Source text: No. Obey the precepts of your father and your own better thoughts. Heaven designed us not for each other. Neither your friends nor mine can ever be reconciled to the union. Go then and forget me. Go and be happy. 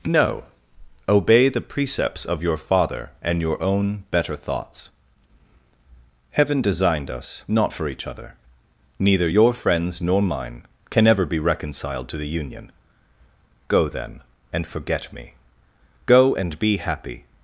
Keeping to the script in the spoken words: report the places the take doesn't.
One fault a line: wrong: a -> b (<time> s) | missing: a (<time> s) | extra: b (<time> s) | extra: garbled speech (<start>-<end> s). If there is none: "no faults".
no faults